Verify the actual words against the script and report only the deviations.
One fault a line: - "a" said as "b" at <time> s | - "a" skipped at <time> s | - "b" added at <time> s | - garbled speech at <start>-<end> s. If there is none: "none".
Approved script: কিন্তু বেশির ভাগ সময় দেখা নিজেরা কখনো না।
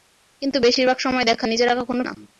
none